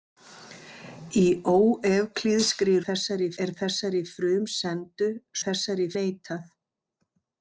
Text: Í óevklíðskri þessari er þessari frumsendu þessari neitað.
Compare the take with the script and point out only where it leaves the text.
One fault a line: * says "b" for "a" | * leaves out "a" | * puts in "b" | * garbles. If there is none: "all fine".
all fine